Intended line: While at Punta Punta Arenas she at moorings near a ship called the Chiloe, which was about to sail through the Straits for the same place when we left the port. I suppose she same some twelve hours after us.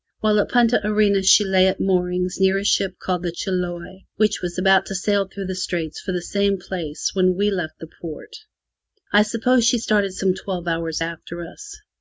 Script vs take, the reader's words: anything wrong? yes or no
yes